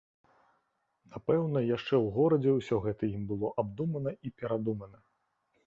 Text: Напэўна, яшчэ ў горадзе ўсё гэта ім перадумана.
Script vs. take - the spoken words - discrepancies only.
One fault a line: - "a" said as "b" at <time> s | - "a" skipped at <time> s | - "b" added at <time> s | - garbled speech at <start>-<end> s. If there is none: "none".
- "было абдумана і" added at 3.4 s